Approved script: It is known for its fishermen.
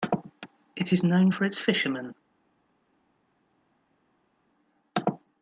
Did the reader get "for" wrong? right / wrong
right